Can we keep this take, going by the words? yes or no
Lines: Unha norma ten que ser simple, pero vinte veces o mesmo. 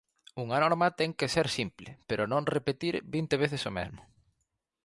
no